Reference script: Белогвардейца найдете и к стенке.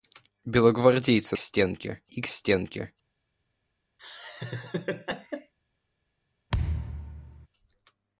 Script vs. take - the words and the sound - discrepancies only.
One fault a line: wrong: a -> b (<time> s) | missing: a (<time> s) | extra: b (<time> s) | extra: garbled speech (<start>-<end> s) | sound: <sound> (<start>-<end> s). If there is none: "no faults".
wrong: найдете -> стенке (1.4 s)
sound: laugh (4.0-5.5 s)
sound: thud (6.5-7.5 s)